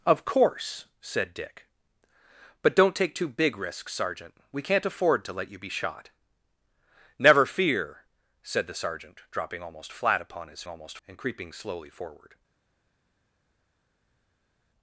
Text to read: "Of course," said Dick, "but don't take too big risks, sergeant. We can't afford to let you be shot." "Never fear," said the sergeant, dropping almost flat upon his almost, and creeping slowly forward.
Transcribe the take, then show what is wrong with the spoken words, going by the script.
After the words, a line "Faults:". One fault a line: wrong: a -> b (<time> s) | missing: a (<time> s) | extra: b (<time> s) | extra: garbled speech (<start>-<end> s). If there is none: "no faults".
"Of course," said Dick, "but don't take too big risks, sergeant. We can't afford to let you be shot." "Never fear," said the sergeant, dropping almost flat upon his almost, and creeping slowly forward.
Faults:
no faults